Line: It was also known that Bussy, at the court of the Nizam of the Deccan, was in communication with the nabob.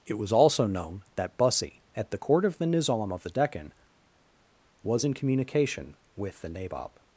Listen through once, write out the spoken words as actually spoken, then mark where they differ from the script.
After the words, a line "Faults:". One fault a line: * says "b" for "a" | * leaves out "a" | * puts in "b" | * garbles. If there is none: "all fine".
It was also known that Bussy, at the court of the Nizam of the Deccan, was in communication with the nabob.
Faults:
all fine